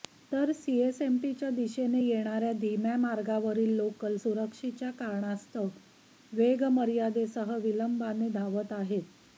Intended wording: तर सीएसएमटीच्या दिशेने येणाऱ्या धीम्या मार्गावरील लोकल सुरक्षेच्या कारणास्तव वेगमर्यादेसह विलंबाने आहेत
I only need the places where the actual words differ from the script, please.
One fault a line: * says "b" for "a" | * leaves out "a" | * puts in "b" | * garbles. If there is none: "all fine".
* puts in "धावत"